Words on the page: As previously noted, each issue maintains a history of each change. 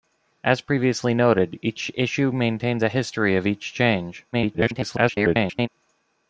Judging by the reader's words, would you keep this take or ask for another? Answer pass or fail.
fail